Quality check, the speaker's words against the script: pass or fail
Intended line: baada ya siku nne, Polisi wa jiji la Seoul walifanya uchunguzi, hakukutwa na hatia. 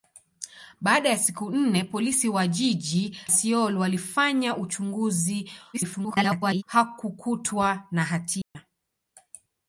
fail